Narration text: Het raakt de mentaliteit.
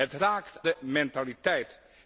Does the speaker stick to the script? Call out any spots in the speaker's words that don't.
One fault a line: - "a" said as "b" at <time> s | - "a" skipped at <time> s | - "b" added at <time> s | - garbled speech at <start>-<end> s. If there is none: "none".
none